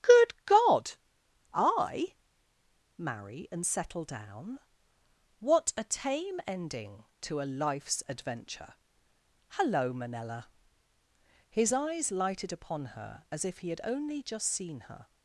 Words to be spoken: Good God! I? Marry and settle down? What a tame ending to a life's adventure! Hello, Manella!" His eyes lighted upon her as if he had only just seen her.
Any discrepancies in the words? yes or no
no